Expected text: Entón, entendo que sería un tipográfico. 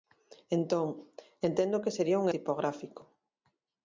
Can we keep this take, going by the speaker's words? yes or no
yes